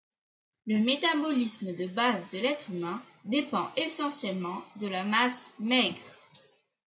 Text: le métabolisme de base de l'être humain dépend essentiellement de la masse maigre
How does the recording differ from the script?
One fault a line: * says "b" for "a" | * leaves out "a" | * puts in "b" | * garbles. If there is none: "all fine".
all fine